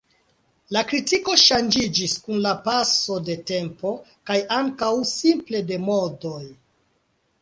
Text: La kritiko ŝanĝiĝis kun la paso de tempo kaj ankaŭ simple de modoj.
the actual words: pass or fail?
pass